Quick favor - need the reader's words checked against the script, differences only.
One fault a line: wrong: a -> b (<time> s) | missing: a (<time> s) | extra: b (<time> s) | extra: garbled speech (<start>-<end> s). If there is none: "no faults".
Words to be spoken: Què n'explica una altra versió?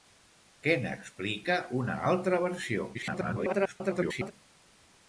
extra: garbled speech (2.9-4.3 s)